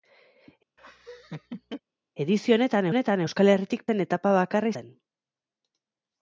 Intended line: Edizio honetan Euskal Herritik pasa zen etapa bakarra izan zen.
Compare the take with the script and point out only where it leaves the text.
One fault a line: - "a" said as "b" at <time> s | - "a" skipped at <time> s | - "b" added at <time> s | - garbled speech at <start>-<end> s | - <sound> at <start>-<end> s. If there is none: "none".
- laugh at 0.8-1.8 s
- "honetan" added at 2.9 s
- "pasa" skipped at 3.9 s
- "izan" skipped at 4.7 s